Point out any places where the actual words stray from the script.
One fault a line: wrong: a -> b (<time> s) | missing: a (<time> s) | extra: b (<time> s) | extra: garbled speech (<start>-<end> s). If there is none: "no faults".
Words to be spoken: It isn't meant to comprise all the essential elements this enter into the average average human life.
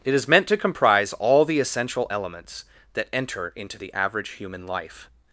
wrong: isn't -> is (0.1 s)
wrong: this -> that (2.9 s)
missing: average (4.3 s)